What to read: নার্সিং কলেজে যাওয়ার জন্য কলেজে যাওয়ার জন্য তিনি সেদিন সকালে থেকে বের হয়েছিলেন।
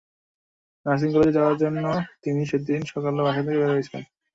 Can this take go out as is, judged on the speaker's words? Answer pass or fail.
fail